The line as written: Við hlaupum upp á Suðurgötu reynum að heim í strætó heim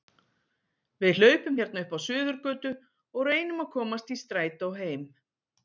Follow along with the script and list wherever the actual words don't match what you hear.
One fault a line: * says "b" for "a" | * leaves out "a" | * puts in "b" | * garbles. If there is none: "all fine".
* puts in "hérna"
* puts in "og"
* says "komast" for "heim"